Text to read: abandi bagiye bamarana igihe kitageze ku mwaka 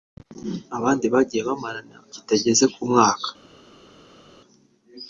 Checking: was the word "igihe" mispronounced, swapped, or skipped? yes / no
yes